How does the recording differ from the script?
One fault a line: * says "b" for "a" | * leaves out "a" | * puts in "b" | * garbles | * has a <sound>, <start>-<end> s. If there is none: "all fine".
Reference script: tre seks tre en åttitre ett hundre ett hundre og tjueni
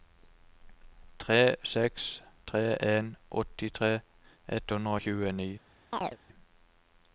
* leaves out "ett hundre"
* has a chirp, 5.9-6.2 s